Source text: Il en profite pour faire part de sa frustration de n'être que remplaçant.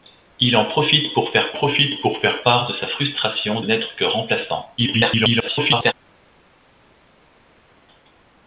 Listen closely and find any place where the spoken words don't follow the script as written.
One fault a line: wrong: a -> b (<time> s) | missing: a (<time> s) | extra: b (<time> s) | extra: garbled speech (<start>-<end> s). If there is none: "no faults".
extra: profite pour faire (1.5 s)
missing: de (3.6 s)
extra: garbled speech (4.8-5.9 s)